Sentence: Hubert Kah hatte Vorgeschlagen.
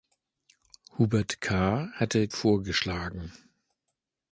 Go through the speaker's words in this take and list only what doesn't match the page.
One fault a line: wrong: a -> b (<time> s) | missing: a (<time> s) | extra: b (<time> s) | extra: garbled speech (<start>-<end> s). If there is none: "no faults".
no faults